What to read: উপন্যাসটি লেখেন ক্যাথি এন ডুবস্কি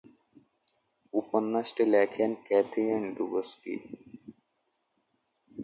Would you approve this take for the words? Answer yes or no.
yes